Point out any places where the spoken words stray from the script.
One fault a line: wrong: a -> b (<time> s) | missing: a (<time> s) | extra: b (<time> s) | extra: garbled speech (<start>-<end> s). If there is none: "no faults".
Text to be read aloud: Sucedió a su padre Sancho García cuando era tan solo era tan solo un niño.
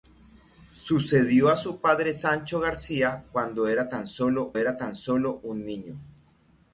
no faults